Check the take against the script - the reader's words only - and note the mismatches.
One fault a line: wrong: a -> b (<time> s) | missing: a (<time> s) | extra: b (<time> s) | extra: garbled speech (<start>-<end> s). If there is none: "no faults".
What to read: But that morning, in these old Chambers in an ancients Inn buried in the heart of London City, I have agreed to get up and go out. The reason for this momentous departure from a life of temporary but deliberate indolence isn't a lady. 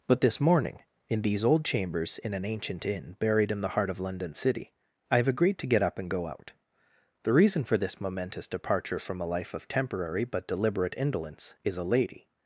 wrong: that -> this (0.2 s)
wrong: ancients -> ancient (2.5 s)
wrong: isn't -> is (11.6 s)